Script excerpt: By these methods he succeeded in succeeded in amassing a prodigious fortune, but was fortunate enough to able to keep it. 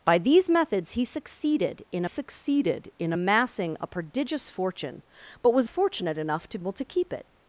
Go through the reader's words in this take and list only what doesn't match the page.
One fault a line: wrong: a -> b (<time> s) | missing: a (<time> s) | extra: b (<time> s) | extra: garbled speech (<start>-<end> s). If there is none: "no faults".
no faults